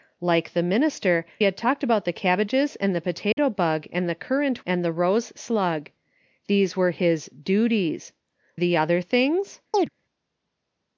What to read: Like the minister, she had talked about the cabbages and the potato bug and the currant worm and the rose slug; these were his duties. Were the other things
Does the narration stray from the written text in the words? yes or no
yes